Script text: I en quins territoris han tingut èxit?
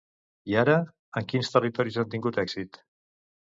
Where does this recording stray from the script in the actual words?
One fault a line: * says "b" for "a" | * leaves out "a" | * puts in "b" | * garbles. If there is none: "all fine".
* puts in "ara"